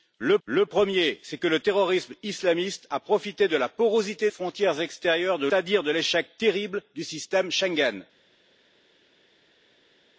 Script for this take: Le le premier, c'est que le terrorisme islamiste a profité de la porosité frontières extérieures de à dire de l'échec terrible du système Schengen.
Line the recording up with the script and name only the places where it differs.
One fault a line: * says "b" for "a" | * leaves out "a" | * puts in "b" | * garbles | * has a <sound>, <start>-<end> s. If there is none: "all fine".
all fine